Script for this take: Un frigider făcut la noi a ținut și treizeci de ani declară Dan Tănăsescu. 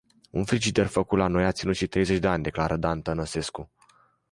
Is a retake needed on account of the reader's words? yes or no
no